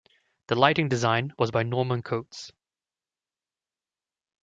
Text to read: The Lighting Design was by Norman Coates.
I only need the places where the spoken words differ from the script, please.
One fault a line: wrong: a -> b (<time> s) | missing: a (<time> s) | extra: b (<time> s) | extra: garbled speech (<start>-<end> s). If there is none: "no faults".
no faults